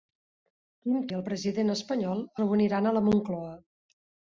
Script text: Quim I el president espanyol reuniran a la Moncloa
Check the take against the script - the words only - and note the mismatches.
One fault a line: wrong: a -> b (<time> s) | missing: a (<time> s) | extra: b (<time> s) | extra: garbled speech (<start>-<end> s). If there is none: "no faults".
no faults